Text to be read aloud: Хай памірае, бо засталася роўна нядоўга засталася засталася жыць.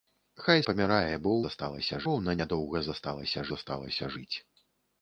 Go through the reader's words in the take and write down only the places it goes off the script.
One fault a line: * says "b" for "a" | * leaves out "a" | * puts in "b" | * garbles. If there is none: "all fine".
all fine